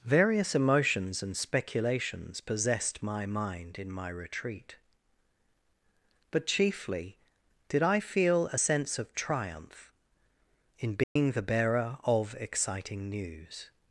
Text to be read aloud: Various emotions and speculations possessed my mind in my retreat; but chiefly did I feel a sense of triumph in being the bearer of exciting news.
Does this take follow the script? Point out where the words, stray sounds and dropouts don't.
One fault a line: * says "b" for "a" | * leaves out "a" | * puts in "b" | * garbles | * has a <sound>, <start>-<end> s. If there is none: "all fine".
* has a dropout, 11.0-11.2 s